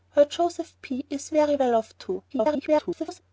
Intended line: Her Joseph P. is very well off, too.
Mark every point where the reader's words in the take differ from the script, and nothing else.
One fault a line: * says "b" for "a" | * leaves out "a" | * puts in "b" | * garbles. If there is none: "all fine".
* garbles